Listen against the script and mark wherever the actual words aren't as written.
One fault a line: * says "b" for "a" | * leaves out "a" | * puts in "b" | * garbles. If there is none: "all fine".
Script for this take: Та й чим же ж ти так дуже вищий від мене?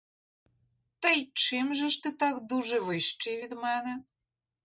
all fine